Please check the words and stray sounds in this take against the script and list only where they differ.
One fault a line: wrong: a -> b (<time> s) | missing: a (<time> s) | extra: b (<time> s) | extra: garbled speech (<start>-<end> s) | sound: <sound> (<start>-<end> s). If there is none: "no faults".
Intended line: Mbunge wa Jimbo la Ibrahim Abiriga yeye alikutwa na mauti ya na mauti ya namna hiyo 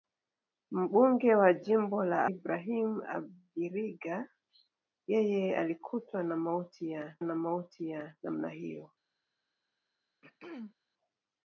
sound: throat clearing (10.2-10.7 s)